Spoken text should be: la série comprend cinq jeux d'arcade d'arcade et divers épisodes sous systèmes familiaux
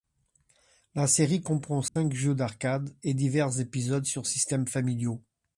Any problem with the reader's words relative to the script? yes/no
yes